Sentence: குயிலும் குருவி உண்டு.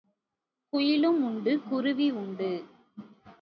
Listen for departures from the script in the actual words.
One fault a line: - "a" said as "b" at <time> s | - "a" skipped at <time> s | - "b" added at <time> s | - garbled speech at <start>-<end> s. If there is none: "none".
- "உண்டு" added at 1.2 s